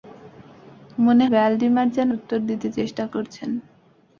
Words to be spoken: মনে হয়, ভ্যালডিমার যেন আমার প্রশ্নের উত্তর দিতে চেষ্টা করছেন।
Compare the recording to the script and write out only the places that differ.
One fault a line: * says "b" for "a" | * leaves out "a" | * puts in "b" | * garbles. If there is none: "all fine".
* leaves out "হয়"
* leaves out "আমার প্রশ্নের"